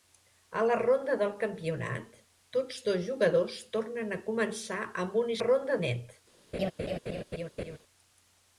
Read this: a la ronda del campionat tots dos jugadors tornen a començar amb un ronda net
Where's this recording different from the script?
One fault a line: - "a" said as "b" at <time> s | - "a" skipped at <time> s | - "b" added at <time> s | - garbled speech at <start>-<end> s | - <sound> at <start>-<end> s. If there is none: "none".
- laugh at 6.5-7.8 s